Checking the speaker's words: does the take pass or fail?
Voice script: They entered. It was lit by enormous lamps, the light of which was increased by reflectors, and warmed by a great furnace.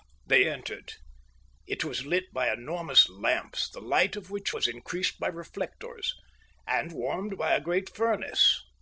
pass